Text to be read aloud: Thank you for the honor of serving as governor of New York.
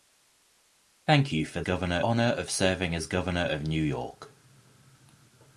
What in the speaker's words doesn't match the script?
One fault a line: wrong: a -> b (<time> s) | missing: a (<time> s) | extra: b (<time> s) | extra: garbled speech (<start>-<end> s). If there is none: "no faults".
wrong: the -> governor (1.6 s)